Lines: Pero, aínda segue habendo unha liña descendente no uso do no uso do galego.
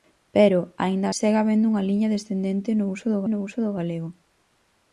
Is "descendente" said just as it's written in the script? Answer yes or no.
yes